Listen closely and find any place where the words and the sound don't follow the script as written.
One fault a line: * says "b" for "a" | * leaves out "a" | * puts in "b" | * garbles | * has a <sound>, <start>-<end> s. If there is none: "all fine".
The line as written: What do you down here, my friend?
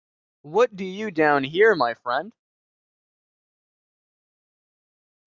all fine